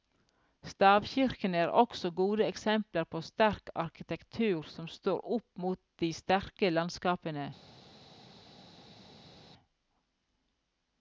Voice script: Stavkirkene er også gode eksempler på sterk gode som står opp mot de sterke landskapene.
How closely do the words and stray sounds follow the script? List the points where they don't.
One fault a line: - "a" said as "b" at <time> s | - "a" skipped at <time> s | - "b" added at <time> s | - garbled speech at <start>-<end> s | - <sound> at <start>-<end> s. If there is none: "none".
- "gode" said as "arkitektur" at 3.8 s